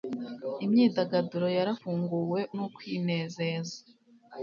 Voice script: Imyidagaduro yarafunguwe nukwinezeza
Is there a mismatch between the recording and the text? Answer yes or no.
no